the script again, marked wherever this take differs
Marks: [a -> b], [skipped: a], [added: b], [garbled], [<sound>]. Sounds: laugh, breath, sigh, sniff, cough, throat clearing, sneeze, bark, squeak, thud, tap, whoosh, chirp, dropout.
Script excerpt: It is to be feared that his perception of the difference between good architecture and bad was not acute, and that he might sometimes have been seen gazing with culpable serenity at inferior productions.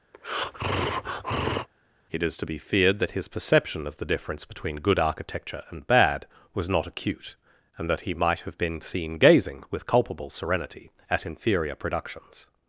[breath] It is to be feared that his perception of the difference between good architecture and bad was not acute, and that he might [skipped: sometimes] have been seen gazing with culpable serenity at inferior productions.